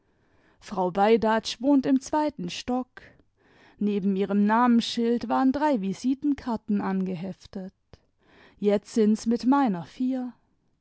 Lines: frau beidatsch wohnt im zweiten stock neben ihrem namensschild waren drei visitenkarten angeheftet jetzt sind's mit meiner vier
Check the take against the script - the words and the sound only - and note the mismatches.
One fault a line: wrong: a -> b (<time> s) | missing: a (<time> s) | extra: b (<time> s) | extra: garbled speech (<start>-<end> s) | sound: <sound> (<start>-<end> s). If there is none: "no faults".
no faults